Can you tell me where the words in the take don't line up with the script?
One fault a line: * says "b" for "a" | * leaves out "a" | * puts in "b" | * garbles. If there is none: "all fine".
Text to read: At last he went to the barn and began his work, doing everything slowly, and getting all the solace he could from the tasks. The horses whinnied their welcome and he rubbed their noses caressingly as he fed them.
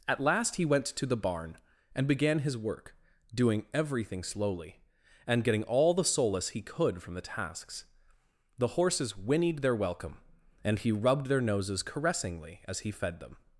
all fine